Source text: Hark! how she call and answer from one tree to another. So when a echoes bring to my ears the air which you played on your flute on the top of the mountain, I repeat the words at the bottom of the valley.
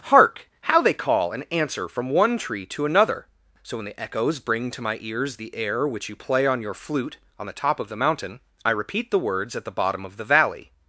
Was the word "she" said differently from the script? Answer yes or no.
yes